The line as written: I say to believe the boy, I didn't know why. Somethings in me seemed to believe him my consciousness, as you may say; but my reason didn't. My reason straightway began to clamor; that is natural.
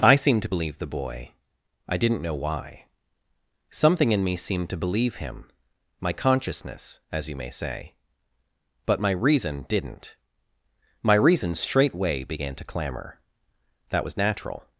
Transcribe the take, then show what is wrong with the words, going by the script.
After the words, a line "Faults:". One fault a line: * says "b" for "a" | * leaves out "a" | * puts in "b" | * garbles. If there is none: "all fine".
I seemed to believe the boy, I didn't know why. Something in me seemed to believe him my consciousness, as you may say; but my reason didn't. My reason straightway began to clamor; that was natural.
Faults:
* says "seemed" for "say"
* says "Something" for "Somethings"
* says "was" for "is"